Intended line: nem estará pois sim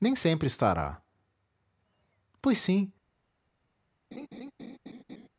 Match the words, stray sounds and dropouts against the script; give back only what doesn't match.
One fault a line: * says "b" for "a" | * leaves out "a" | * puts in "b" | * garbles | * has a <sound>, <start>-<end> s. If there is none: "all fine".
* puts in "sempre"
* has a laugh, 4.1-5.3 s